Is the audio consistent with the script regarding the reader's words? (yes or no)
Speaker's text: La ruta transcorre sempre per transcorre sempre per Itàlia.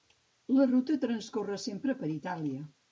no